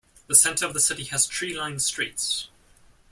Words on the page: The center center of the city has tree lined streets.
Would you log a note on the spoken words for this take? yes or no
yes